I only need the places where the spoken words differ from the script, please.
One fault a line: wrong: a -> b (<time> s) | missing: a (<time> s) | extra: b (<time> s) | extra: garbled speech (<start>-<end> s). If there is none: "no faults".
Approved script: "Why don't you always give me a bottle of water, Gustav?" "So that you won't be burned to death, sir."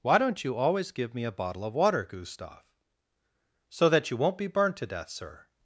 no faults